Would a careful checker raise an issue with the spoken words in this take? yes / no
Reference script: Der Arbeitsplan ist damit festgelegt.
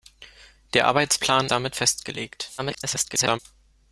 yes